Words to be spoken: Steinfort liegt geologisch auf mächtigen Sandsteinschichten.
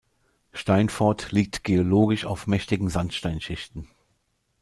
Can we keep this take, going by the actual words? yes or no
yes